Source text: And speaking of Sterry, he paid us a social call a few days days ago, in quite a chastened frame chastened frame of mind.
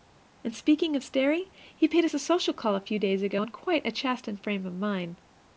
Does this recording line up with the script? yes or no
no